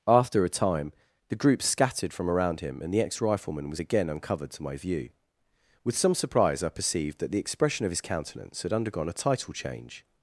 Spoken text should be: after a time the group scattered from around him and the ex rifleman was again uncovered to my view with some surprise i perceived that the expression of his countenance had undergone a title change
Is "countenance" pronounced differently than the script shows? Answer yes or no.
no